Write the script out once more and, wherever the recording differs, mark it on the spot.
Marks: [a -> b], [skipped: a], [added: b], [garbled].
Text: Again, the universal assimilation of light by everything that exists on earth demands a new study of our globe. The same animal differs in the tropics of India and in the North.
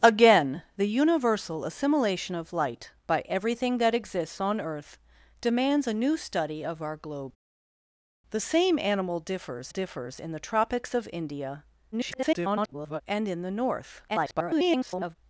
Again, the universal assimilation of light by everything that exists on earth demands a new study of our globe. The same animal differs [added: differs] in the tropics of India [garbled] and in the North. [garbled]